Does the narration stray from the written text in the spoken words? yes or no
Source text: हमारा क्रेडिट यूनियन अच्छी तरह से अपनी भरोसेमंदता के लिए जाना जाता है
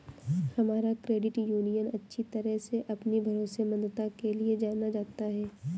no